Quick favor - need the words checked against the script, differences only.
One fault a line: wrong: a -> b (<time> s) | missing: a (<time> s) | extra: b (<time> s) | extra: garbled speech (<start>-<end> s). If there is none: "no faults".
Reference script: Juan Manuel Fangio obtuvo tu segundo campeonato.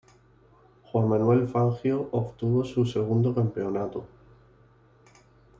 wrong: tu -> su (2.6 s)